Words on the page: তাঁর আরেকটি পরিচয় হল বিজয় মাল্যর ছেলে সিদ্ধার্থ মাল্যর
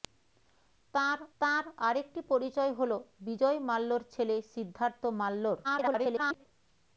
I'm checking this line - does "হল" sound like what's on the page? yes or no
yes